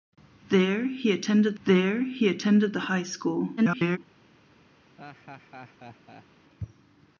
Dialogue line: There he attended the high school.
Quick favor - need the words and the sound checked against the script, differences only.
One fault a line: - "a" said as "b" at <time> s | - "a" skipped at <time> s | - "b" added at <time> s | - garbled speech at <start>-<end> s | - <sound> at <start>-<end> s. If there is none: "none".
- "there he attended" added at 1.6 s
- garbled speech at 3.6-4.0 s
- laugh at 5.0-6.3 s